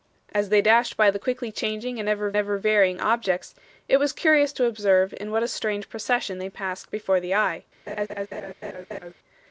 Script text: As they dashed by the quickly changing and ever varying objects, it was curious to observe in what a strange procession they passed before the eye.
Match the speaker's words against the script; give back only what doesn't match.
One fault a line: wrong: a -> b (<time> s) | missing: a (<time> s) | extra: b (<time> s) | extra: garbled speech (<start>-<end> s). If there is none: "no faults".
extra: ever (2.4 s)